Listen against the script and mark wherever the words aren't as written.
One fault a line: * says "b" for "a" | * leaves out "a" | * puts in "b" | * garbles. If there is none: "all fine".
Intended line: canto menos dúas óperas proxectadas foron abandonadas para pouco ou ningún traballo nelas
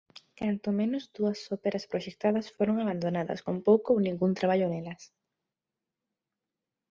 * says "con" for "para"